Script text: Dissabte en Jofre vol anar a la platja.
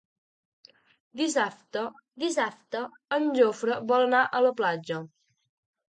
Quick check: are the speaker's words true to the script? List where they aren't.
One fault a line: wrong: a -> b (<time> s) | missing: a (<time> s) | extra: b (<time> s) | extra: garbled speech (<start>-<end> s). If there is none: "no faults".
extra: dissabte (2.2 s)